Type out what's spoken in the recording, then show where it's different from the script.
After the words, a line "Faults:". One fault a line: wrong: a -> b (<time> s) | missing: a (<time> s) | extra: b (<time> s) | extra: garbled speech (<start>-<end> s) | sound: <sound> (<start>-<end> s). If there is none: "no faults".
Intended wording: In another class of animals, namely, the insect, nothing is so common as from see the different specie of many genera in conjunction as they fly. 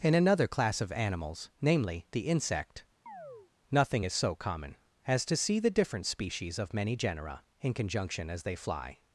In another class of animals, namely, the insect, nothing is so common as to see the different species of many genera in conjunction as they fly.
Faults:
sound: chirp (3.1-3.5 s)
wrong: from -> to (5.2 s)
wrong: specie -> species (6.0 s)